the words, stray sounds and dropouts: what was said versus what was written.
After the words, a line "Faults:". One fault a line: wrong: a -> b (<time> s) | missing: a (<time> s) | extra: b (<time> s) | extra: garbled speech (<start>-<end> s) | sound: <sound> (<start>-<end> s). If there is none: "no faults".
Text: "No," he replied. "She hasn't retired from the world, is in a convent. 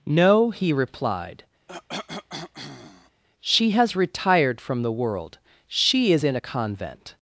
"No," he replied. "She has retired from the world, she is in a convent.
Faults:
sound: cough (1.7-3.2 s)
wrong: hasn't -> has (3.7 s)
extra: she (5.7 s)